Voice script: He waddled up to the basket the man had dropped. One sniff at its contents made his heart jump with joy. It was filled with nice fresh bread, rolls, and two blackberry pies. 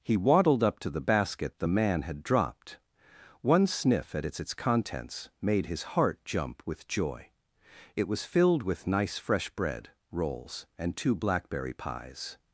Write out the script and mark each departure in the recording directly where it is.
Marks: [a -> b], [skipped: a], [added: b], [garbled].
He waddled up to the basket the man had dropped. One sniff at its [added: its] contents made his heart jump with joy. It was filled with nice fresh bread, rolls, and two blackberry pies.